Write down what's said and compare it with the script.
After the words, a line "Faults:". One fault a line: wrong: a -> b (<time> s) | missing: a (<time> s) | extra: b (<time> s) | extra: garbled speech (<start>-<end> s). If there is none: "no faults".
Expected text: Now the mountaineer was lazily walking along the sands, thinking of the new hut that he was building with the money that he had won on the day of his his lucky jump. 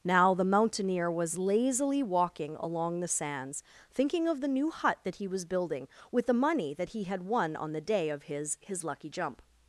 Now the mountaineer was lazily walking along the sands, thinking of the new hut that he was building with the money that he had won on the day of his his lucky jump.
Faults:
no faults